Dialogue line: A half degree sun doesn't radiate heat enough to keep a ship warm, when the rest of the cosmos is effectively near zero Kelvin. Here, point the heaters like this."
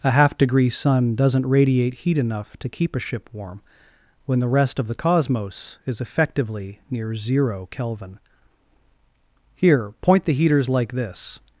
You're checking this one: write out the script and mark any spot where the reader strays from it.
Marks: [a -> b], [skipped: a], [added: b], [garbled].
A half degree sun doesn't radiate heat enough to keep a ship warm, when the rest of the cosmos is effectively near zero Kelvin. Here, point the heaters like this."